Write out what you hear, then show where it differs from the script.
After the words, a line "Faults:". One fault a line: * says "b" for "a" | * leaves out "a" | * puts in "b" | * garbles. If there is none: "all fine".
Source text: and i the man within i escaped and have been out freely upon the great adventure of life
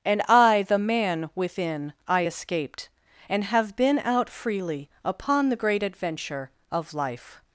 and i the man within i escaped and have been out freely upon the great adventure of life
Faults:
all fine